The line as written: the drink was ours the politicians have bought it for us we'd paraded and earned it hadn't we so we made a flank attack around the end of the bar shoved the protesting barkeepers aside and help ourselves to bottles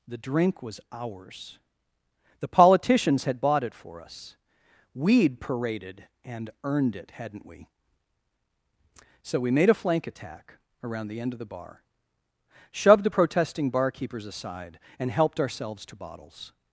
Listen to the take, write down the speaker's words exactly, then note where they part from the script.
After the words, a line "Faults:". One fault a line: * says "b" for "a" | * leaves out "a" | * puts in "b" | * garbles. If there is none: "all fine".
the drink was ours the politicians had bought it for us we'd paraded and earned it hadn't we so we made a flank attack around the end of the bar shoved the protesting barkeepers aside and helped ourselves to bottles
Faults:
* says "had" for "have"
* says "helped" for "help"